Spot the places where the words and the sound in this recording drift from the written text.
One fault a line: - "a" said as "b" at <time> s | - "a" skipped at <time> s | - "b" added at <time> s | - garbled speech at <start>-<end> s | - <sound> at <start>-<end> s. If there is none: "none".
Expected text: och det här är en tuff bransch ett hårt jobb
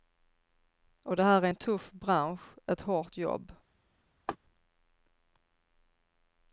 - laugh at 4.3-4.4 s